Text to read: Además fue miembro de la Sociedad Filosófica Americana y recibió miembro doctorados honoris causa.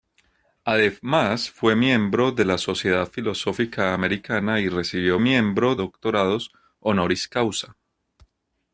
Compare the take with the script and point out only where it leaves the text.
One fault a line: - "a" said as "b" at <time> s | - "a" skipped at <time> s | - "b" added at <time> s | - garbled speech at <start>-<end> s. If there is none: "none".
none